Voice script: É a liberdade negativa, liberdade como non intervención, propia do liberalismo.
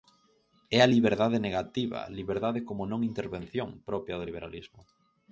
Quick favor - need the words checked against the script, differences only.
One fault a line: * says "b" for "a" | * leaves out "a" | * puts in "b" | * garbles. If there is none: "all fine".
all fine